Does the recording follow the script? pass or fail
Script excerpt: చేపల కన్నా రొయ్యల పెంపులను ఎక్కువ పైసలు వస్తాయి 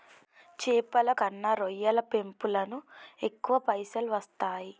pass